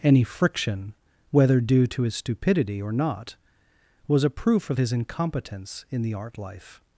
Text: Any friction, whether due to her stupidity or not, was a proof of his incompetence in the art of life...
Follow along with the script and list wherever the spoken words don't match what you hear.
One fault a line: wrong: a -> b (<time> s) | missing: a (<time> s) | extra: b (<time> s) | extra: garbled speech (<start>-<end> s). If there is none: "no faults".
wrong: her -> his (2.0 s)
missing: of (6.4 s)